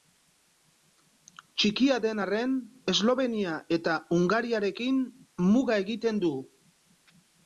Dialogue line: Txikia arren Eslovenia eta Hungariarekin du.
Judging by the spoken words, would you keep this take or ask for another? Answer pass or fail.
fail